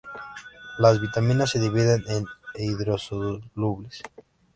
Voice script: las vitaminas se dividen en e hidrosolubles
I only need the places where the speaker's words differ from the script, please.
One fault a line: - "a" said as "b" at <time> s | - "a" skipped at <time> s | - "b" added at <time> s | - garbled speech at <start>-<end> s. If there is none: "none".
none